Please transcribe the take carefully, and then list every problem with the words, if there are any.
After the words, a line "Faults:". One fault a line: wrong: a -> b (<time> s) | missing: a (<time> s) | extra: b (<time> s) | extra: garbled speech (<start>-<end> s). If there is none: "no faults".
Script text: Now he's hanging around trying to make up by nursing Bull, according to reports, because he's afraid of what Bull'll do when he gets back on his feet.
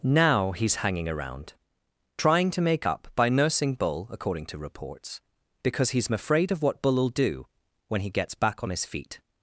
Now he's hanging around trying to make up by nursing Bull, according to reports, because he's afraid of what Bull'll do when he gets back on his feet.
Faults:
no faults